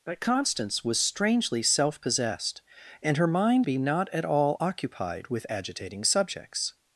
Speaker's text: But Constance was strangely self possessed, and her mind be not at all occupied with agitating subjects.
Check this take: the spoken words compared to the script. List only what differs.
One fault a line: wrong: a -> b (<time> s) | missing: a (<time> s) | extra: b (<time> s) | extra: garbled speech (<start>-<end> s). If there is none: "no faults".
no faults